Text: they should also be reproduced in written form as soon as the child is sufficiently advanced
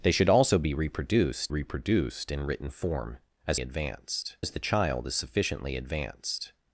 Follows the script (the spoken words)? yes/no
no